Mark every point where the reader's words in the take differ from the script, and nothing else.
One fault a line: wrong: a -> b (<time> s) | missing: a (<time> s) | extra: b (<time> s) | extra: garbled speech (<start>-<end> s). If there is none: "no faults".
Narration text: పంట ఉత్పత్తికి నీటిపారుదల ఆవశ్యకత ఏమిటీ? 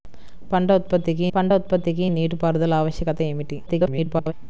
extra: పంట ఉత్పత్తికి (1.3 s)
extra: garbled speech (3.7-4.3 s)